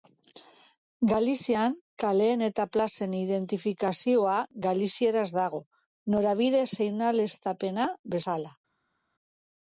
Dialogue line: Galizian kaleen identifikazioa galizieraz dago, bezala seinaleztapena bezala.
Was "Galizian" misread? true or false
false